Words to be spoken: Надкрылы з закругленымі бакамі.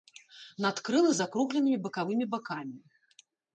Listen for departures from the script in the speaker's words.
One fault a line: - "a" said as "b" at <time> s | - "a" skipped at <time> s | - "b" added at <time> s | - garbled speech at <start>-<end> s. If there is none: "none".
- "бакавымі" added at 1.9 s